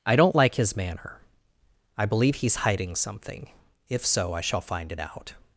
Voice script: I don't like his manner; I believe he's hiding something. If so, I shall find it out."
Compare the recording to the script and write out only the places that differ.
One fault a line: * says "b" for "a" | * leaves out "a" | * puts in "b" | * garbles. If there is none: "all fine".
all fine